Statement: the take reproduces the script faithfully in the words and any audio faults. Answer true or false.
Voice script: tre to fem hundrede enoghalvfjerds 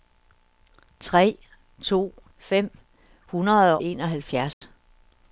false